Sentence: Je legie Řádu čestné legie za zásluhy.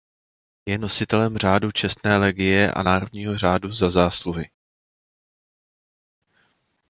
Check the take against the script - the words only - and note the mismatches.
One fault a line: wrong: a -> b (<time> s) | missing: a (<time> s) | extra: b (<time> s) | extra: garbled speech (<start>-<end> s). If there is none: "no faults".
wrong: legie -> nositelem (0.8 s)
extra: a Národního řádu (2.7 s)